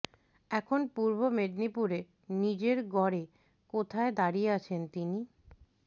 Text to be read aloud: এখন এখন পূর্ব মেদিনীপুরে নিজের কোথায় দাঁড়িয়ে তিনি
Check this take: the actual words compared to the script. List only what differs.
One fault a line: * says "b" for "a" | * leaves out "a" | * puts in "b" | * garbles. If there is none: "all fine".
* leaves out "এখন"
* puts in "গড়ে"
* puts in "আছেন"